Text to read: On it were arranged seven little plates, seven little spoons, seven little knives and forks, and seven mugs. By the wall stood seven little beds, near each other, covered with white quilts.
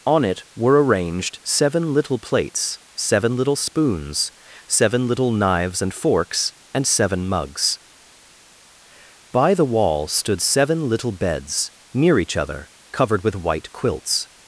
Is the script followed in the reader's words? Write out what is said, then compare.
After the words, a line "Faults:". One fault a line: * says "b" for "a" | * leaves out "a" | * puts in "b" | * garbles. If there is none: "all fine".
On it were arranged seven little plates, seven little spoons, seven little knives and forks, and seven mugs. By the wall stood seven little beds, near each other, covered with white quilts.
Faults:
all fine